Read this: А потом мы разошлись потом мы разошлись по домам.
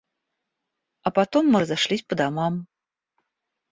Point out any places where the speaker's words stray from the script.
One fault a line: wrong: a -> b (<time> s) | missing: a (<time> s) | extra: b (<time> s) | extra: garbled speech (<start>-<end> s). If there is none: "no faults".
missing: потом мы разошлись (2.0 s)